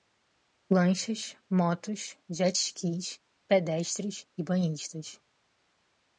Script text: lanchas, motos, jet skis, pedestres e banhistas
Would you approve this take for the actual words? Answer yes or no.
yes